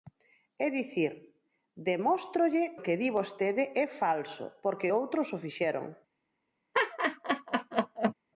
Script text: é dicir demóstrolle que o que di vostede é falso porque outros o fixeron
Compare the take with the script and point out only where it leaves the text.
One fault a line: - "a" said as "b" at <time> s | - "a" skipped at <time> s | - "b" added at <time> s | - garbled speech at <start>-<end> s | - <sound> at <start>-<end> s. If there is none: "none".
- "que" skipped at 2.8 s
- laugh at 6.7-8.1 s